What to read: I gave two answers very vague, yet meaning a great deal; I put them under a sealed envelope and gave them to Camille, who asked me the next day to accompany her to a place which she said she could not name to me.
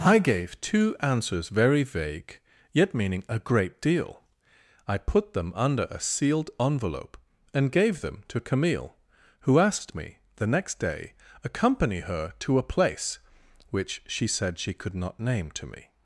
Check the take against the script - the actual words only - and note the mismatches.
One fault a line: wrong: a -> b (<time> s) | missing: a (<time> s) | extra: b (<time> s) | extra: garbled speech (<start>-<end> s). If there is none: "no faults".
missing: to (11.1 s)